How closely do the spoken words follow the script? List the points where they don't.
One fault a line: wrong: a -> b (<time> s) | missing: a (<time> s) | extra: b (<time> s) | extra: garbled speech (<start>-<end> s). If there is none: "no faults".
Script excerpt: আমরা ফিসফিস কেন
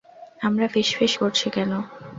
extra: করছি (1.1 s)